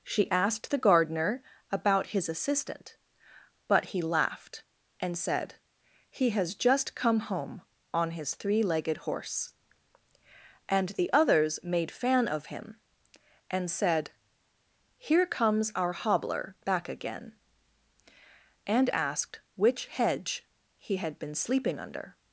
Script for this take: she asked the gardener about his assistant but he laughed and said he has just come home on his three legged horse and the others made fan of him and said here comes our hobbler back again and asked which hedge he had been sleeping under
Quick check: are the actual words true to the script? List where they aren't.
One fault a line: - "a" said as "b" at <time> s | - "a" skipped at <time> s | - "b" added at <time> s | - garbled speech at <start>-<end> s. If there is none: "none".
none